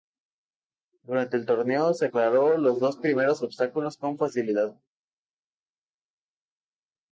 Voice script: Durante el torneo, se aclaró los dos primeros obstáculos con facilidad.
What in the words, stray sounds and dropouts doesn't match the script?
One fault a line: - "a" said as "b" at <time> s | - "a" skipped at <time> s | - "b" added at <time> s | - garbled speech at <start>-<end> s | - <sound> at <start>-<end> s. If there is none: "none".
none